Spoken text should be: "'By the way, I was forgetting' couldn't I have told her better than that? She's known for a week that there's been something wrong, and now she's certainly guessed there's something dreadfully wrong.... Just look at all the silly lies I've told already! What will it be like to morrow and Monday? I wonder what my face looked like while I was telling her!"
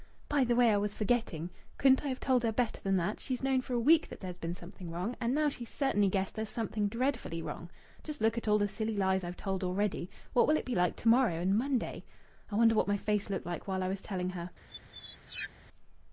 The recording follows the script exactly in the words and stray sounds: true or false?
false